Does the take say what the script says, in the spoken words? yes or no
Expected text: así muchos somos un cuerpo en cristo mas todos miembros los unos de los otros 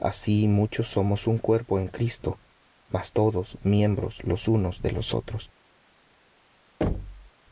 yes